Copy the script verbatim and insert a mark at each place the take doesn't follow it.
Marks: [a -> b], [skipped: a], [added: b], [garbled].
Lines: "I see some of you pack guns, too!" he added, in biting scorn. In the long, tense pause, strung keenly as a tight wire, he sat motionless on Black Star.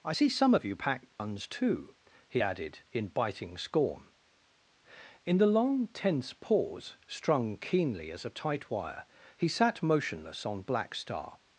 "I see some of you pack guns, too!" he added, in biting scorn. In the long, tense pause, strung keenly as a tight wire, he sat motionless on Black Star.